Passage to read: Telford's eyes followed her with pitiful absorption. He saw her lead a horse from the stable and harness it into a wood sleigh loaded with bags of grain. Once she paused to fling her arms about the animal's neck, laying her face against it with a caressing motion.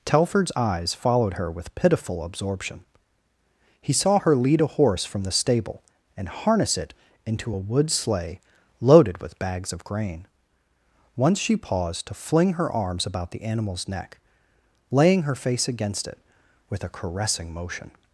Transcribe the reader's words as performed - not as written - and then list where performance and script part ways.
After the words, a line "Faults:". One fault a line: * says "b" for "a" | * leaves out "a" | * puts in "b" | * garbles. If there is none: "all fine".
Telford's eyes followed her with pitiful absorption. He saw her lead a horse from the stable and harness it into a wood sleigh loaded with bags of grain. Once she paused to fling her arms about the animal's neck, laying her face against it with a caressing motion.
Faults:
all fine